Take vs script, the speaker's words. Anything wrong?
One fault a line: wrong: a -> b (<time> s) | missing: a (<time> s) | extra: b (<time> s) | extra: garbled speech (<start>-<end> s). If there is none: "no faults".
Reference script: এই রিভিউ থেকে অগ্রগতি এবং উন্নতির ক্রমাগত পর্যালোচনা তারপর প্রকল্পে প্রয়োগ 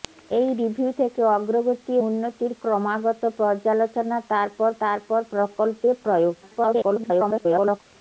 missing: এবং (1.9 s)
extra: তারপর (4.8 s)
extra: garbled speech (6.4-7.8 s)